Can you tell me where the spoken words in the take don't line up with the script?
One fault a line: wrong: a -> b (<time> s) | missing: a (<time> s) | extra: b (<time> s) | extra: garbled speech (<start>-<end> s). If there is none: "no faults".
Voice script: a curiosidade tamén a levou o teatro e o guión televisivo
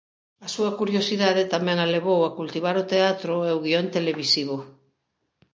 extra: súa (0.6 s)
extra: a cultivar (2.2 s)